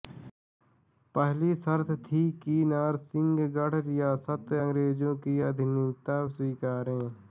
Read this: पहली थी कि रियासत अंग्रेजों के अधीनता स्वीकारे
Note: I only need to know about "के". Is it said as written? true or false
false